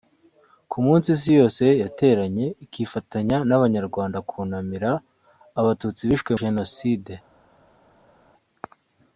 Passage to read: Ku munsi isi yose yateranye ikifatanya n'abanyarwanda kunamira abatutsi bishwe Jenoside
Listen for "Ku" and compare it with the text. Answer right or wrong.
right